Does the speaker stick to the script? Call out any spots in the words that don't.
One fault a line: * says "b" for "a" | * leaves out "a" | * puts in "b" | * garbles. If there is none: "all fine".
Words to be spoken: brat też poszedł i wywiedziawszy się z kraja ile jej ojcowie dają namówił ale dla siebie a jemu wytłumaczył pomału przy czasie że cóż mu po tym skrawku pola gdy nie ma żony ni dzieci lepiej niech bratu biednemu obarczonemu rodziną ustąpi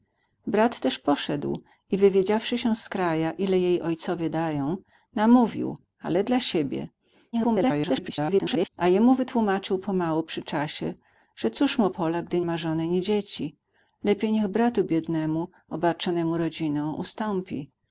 * garbles
* leaves out "po tym skrawku"
* leaves out "nie"